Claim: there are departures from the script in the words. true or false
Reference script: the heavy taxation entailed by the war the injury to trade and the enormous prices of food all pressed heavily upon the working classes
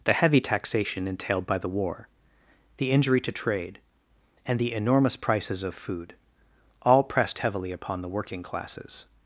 false